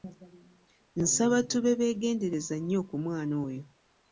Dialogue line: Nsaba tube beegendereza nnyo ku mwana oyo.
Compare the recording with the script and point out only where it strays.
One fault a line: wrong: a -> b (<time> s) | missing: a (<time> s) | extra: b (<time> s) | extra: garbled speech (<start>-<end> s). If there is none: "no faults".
no faults